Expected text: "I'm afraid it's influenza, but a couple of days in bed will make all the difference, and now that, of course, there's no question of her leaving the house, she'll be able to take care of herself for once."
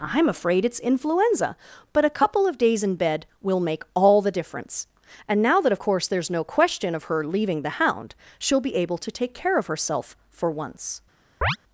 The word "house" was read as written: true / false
false